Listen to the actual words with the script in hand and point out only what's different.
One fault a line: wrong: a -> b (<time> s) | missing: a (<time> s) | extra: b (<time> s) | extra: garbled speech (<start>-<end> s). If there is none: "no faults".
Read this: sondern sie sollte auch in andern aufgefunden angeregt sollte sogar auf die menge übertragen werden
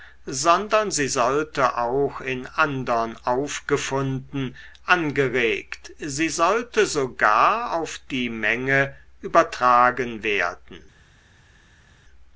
extra: sie (6.0 s)